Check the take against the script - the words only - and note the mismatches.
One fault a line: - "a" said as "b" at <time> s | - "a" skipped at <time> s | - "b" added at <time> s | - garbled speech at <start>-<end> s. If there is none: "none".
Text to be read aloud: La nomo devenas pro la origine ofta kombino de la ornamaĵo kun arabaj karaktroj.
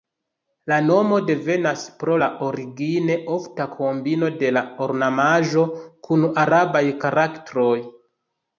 none